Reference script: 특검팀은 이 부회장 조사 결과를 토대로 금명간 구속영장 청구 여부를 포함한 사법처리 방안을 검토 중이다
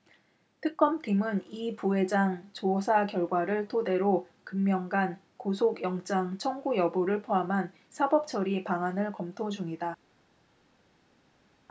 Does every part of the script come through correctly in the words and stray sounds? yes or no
yes